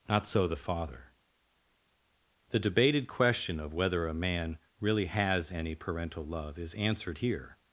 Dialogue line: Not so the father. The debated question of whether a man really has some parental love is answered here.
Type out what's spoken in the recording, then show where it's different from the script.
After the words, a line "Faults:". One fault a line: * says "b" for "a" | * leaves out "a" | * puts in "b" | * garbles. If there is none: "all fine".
Not so the father. The debated question of whether a man really has any parental love is answered here.
Faults:
* says "any" for "some"